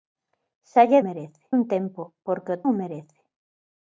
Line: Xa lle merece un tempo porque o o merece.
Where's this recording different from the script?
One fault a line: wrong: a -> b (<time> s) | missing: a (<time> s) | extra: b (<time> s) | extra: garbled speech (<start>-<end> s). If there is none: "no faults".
no faults